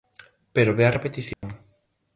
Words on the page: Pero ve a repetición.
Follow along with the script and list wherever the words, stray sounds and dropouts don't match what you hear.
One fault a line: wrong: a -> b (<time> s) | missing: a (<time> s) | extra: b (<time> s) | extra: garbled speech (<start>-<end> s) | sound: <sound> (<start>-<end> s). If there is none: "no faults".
sound: dropout (1.3-1.4 s)